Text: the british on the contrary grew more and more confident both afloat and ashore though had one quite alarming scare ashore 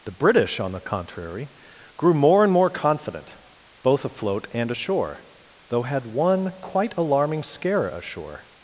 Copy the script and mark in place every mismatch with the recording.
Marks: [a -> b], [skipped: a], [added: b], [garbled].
the british on the contrary grew more and more confident both afloat and ashore though had one quite alarming scare ashore